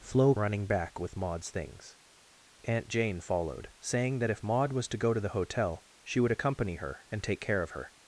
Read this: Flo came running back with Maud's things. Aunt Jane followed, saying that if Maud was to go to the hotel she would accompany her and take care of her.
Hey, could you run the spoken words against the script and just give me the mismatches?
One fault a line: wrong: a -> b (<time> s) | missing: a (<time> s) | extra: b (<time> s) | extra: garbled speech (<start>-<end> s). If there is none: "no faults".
missing: came (0.3 s)